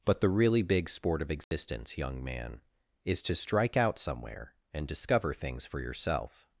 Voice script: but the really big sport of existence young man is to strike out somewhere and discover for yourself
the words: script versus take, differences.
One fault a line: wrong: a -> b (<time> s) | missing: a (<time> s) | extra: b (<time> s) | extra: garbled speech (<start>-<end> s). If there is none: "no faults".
extra: things (5.3 s)